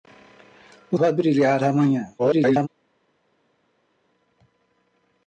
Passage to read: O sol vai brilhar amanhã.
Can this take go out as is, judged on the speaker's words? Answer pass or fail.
fail